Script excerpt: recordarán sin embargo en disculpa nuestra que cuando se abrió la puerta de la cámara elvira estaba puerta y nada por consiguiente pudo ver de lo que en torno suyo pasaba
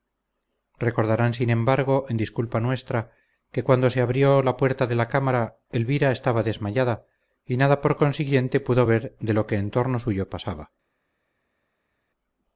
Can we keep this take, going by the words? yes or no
no